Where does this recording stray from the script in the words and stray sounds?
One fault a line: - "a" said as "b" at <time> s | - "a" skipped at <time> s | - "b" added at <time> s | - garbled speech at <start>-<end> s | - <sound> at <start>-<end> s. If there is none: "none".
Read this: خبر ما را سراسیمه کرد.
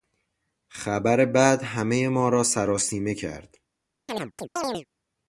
- "بد همهی" added at 1.2 s
- chirp at 4.1-4.9 s